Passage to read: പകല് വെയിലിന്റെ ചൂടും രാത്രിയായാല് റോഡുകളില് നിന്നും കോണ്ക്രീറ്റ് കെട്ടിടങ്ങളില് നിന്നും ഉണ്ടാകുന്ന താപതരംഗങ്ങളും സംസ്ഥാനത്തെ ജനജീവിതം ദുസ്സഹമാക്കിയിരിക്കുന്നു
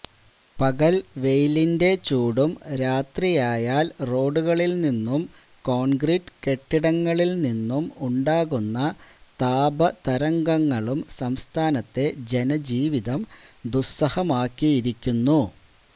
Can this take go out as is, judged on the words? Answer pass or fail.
pass